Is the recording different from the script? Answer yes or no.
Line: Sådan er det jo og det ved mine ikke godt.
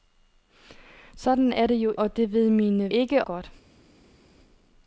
no